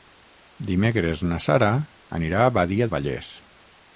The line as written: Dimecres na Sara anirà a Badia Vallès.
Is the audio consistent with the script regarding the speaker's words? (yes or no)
yes